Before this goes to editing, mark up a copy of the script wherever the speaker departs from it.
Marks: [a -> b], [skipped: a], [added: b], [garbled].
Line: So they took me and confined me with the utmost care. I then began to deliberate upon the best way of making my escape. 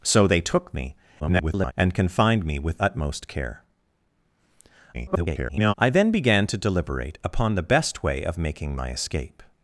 So they took me [garbled] and confined me with [skipped: the] utmost care. [garbled] I then began to deliberate upon the best way of making my escape.